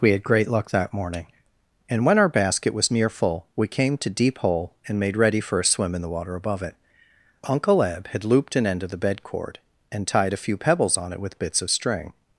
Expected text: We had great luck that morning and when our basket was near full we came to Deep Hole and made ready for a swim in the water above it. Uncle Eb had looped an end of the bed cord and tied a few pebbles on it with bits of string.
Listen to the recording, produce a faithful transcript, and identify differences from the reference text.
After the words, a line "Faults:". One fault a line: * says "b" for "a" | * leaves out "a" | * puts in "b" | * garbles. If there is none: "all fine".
We had great luck that morning and when our basket was near full we came to Deep Hole and made ready for a swim in the water above it. Uncle Eb had looped an end of the bed cord and tied a few pebbles on it with bits of string.
Faults:
all fine